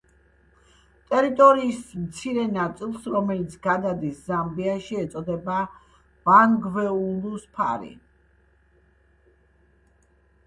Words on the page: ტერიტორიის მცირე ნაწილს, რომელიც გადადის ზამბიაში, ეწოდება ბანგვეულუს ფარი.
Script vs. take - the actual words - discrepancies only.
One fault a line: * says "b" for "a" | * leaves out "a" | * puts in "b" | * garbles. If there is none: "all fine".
all fine